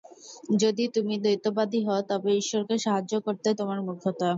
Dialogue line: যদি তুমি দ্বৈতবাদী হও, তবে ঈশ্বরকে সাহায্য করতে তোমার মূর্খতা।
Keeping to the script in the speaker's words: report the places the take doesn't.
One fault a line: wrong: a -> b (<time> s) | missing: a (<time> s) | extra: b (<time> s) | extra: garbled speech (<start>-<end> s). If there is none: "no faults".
no faults